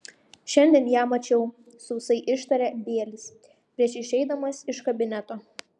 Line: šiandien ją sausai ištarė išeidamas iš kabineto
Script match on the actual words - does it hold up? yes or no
no